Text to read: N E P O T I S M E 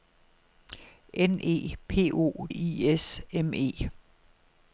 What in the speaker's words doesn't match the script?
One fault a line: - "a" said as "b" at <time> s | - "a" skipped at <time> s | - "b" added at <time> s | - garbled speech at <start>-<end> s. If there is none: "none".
- "T" skipped at 2.5 s